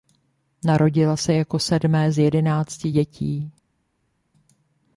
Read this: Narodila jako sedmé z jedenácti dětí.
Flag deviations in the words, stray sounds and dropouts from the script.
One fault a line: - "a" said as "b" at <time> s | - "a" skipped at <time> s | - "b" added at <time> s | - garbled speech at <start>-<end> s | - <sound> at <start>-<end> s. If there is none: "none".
- "se" added at 1.2 s